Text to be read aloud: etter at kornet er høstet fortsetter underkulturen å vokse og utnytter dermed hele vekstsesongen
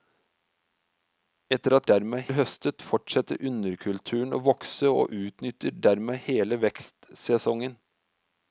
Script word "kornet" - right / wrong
wrong